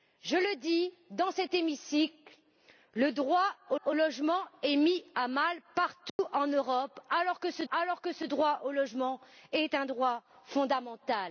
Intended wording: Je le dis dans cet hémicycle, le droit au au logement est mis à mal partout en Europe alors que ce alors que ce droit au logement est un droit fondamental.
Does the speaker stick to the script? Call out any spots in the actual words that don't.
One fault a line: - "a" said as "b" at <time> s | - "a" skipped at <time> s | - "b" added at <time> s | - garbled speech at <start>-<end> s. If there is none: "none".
none